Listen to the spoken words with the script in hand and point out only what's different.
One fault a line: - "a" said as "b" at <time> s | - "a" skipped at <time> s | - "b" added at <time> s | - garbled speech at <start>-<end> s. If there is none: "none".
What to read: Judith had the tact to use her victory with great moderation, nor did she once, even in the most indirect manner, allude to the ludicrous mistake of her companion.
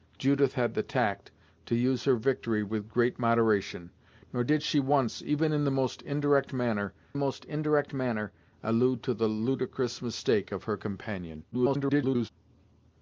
- "most indirect manner" added at 7.1 s
- garbled speech at 11.5-12.3 s